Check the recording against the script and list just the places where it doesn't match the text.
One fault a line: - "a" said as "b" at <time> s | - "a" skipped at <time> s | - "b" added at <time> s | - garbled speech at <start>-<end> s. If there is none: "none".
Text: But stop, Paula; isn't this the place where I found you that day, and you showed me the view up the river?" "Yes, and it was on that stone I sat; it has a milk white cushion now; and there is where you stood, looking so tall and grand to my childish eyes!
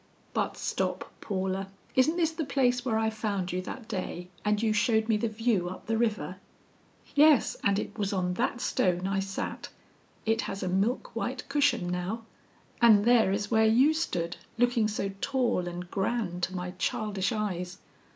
none